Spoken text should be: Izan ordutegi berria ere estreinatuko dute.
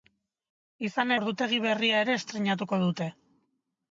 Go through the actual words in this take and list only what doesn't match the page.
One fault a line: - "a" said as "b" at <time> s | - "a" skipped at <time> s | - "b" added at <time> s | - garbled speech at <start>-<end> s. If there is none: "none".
none